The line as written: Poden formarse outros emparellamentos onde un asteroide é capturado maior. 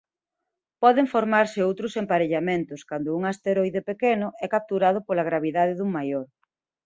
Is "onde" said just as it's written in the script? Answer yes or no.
no